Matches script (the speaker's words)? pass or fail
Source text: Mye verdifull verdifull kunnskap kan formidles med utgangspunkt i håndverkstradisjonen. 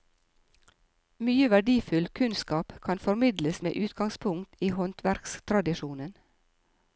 fail